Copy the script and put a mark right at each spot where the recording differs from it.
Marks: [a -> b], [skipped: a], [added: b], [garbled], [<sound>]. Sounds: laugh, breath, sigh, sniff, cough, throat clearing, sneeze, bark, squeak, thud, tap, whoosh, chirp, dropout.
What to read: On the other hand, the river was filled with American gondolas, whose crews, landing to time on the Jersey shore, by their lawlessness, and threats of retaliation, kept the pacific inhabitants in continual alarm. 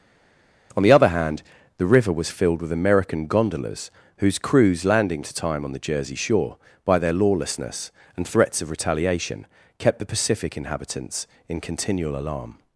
On the other hand, the river was filled with American gondolas, whose crews, landing to time on the Jersey shore, by their lawlessness, and threats of retaliation, kept the pacific inhabitants in continual alarm.